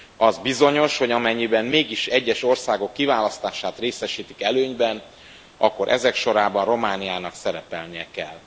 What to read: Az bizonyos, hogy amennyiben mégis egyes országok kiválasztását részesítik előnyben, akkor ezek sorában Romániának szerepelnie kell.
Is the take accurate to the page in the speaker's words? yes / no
yes